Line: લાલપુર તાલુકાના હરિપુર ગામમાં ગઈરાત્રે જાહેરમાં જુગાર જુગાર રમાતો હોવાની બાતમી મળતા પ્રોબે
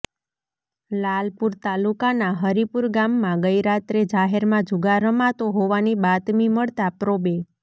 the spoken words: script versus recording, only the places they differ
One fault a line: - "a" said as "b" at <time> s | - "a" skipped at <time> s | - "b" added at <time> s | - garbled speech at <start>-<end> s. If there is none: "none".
- "જુગાર" skipped at 5.0 s